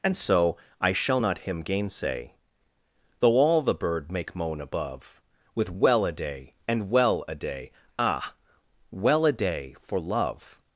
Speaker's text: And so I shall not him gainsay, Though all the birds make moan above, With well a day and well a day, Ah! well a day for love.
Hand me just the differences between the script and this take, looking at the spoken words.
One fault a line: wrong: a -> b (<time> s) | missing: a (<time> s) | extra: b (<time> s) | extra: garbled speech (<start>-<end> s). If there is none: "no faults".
wrong: birds -> bird (3.7 s)